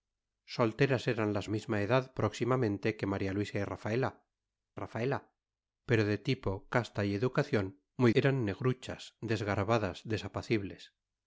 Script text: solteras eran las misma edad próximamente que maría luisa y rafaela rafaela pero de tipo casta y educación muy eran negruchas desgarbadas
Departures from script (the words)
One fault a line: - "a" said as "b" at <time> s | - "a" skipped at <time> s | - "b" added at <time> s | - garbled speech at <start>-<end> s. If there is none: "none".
none